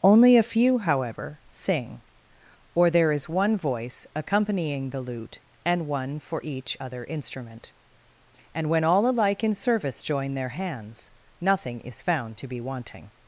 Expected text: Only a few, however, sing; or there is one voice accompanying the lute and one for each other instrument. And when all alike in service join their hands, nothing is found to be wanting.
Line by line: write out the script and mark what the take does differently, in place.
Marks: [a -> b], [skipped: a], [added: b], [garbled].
Only a few, however, sing; or there is one voice accompanying the lute and one for each other instrument. And when all alike in service join their hands, nothing is found to be wanting.